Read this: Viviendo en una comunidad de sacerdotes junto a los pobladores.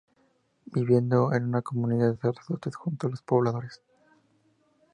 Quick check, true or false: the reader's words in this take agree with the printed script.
true